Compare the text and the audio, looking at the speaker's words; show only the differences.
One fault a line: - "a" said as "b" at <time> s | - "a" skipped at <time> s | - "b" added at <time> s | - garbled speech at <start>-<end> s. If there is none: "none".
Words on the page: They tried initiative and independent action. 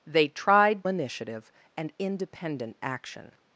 none